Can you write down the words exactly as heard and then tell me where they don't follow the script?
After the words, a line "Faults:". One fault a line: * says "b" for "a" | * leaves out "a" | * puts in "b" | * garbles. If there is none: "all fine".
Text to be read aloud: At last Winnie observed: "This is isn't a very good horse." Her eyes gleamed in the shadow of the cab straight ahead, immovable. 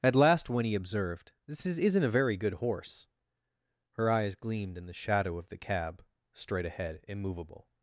At last Winnie observed: "This is isn't a very good horse." Her eyes gleamed in the shadow of the cab straight ahead, immovable.
Faults:
all fine